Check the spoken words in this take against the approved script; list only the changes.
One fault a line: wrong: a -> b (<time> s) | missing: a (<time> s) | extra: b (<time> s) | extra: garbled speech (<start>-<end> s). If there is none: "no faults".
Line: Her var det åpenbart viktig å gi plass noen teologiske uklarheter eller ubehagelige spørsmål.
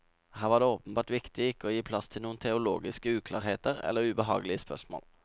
extra: ikke (1.5 s)
extra: til (2.1 s)